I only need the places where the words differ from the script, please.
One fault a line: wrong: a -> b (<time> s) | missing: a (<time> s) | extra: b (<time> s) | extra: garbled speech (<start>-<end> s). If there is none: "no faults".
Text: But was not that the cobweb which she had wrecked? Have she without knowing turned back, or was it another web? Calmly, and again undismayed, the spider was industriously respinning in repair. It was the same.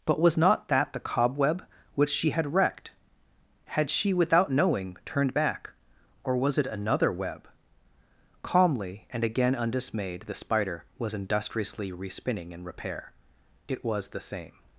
wrong: Have -> Had (3.6 s)